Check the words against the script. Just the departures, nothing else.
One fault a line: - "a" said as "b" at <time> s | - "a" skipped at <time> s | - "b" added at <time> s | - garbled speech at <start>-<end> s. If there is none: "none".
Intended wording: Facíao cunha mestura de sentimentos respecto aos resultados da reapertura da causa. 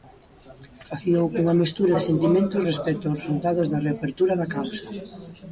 none